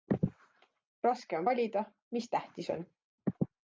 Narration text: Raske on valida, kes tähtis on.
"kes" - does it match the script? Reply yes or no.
no